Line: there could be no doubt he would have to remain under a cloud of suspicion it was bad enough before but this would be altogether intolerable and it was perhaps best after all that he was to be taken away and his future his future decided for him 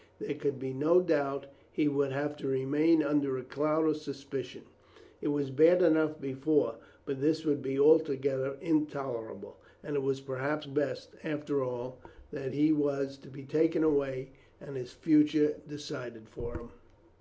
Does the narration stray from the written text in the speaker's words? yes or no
yes